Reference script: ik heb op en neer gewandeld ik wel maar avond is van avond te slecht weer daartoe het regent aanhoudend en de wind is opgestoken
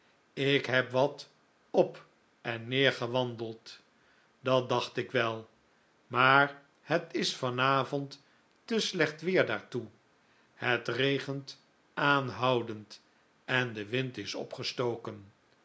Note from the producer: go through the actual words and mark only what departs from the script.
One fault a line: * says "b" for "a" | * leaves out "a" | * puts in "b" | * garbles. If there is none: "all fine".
* puts in "wat"
* puts in "dat dacht"
* says "het" for "avond"